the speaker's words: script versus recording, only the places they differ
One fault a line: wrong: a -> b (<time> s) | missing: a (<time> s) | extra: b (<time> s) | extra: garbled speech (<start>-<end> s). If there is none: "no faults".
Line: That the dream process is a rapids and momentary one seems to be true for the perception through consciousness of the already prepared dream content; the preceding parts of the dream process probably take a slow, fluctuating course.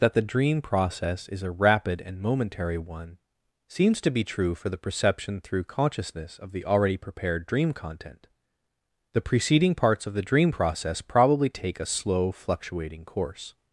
wrong: rapids -> rapid (1.5 s)